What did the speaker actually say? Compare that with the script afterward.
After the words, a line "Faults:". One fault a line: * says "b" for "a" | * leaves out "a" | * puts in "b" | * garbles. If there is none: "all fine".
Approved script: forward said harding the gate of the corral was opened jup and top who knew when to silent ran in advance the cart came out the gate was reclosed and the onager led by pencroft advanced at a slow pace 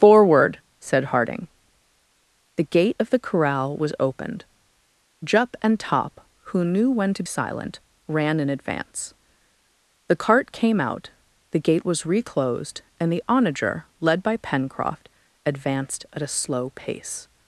forward said harding the gate of the corral was opened jup and top who knew when to silent ran in advance the cart came out the gate was reclosed and the onager led by pencroft advanced at a slow pace
Faults:
all fine